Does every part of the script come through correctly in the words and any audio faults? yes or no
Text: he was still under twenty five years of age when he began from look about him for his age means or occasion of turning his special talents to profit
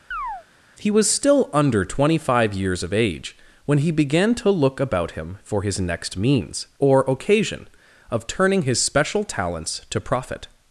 no